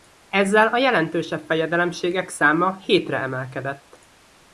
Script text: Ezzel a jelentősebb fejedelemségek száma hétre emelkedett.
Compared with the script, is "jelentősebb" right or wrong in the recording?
right